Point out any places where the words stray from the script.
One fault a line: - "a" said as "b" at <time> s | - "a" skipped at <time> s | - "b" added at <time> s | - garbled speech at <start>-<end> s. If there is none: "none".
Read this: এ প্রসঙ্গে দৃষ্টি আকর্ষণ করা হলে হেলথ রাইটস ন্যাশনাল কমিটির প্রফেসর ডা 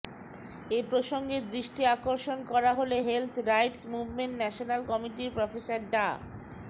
- "মুভমেন্ট" added at 3.9 s